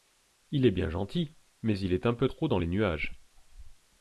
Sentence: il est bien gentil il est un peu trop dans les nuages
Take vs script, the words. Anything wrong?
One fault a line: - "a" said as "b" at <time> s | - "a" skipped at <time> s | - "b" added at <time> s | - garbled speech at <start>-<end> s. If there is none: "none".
- "mais" added at 1.6 s